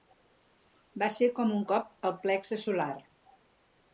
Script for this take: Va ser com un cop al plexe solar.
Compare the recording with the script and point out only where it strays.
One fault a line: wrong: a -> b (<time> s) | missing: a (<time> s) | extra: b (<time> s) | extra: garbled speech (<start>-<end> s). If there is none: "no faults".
no faults